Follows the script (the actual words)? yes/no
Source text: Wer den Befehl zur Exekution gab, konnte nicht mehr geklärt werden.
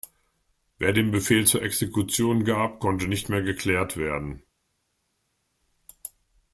yes